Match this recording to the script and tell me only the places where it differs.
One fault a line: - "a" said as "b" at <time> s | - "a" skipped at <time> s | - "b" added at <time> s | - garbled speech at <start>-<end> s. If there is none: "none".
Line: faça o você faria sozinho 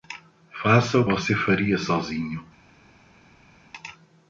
none